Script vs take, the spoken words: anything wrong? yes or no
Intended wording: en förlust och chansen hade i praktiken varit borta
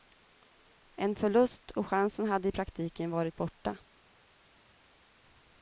no